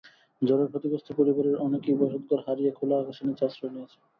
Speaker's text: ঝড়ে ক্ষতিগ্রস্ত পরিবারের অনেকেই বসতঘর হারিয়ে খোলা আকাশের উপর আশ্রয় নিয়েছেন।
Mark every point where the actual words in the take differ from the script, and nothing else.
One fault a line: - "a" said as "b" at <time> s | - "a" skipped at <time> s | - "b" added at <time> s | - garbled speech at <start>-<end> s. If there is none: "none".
- "উপর" said as "নিচে" at 3.3 s